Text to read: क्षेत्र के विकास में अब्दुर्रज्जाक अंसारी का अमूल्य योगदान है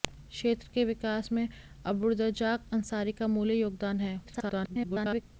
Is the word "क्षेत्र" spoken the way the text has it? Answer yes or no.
yes